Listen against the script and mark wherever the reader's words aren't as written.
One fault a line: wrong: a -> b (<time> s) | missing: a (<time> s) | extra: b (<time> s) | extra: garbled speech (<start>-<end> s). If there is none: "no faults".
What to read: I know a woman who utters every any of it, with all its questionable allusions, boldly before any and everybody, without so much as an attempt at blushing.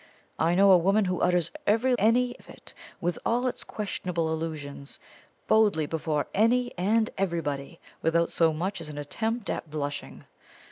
no faults